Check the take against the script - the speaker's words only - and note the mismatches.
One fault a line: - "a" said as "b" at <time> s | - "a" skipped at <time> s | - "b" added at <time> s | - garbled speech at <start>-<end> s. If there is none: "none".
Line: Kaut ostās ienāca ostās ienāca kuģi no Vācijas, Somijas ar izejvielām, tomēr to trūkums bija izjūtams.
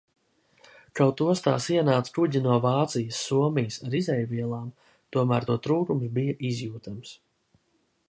- "ostās ienāca" skipped at 2.1 s